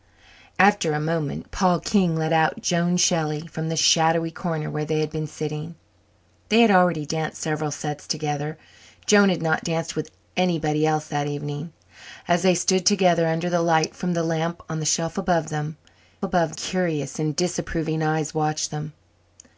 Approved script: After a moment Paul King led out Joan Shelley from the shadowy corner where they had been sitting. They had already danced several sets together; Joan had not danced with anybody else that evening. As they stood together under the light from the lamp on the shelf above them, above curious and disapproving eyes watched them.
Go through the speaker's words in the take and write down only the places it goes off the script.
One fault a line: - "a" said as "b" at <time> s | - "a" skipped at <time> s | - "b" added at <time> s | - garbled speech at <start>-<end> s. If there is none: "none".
none